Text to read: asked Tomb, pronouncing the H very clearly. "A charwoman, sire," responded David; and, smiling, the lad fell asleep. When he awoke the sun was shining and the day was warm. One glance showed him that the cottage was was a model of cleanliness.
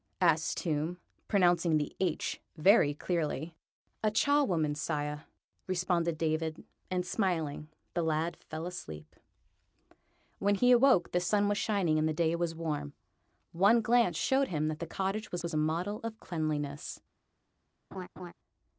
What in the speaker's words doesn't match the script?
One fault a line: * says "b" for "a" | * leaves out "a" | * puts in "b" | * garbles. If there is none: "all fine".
all fine